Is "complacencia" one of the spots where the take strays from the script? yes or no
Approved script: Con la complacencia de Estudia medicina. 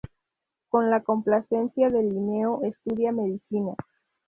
no